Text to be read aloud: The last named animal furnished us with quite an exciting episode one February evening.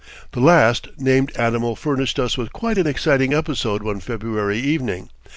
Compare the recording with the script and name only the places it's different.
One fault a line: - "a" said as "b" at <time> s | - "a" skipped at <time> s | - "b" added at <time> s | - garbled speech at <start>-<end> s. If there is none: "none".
none